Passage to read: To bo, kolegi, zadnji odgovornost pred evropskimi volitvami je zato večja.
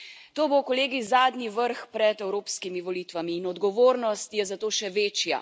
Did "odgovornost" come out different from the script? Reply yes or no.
yes